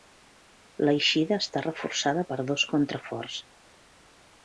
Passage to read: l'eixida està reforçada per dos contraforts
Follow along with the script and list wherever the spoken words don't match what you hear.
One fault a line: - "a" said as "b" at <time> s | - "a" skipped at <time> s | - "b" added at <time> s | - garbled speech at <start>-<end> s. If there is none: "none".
none